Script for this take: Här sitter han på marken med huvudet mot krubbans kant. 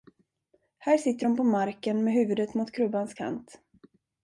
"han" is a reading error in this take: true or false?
true